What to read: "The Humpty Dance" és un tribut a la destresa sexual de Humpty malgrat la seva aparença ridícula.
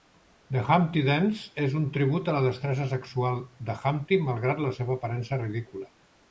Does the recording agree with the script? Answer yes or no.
yes